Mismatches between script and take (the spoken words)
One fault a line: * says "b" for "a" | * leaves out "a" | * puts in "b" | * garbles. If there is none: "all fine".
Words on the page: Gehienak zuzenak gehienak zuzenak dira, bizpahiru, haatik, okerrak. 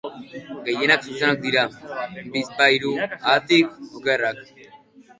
* leaves out "gehienak zuzenak"